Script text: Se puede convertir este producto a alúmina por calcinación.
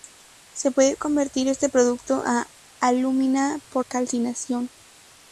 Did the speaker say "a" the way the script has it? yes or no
yes